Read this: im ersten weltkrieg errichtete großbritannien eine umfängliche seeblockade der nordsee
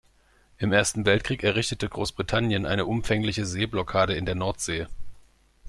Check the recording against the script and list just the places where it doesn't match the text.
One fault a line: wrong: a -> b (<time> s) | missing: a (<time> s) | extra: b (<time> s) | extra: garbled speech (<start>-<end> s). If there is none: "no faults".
extra: in (4.1 s)